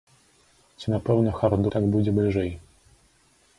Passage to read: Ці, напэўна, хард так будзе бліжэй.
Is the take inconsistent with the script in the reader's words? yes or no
no